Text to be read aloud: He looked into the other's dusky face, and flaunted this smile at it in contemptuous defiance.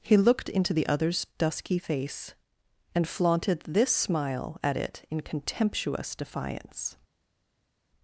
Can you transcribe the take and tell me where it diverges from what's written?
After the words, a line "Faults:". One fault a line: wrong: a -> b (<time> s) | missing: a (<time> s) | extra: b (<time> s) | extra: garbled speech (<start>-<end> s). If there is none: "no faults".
He looked into the other's dusky face, and flaunted this smile at it in contemptuous defiance.
Faults:
no faults